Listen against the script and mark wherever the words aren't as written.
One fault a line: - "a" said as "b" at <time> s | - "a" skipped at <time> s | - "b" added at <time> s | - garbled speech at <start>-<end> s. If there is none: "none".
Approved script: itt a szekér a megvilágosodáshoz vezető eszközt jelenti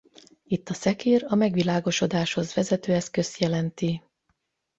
none